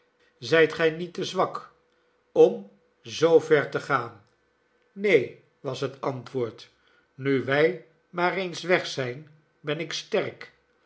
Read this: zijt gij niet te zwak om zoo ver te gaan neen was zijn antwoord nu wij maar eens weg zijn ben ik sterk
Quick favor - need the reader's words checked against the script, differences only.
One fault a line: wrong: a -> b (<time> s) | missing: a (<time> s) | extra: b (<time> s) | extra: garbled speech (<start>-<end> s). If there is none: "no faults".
wrong: zijn -> het (5.8 s)